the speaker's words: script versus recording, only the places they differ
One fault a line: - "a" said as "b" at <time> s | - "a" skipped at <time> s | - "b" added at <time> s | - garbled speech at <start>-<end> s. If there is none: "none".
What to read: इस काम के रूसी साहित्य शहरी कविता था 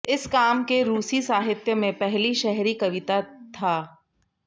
- "में पहली" added at 1.8 s